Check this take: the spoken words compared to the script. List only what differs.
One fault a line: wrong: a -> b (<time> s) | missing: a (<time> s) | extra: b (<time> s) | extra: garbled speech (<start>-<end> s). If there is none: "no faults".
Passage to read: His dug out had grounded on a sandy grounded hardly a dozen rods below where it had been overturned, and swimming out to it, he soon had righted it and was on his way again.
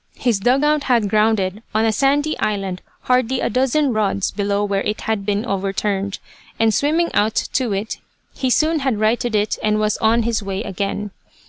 wrong: grounded -> island (2.4 s)